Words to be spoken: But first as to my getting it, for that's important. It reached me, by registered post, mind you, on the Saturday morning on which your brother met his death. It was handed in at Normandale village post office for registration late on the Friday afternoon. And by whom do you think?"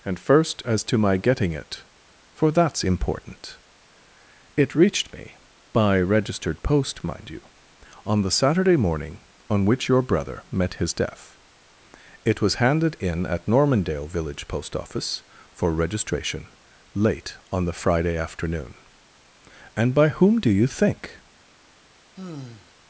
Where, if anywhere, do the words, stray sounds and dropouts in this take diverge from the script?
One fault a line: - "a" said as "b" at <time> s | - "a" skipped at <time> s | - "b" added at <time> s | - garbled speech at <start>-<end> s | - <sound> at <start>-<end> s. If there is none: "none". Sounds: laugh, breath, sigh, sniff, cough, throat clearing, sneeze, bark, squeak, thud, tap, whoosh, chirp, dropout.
- "But" said as "And" at 0.0 s
- sigh at 22.2-22.7 s